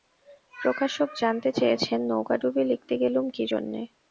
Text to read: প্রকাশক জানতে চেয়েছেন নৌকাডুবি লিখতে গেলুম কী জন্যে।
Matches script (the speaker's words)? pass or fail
pass